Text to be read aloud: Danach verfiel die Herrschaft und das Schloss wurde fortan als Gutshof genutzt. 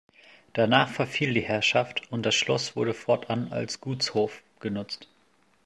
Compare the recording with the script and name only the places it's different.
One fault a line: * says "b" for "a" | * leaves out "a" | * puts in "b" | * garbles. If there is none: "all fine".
all fine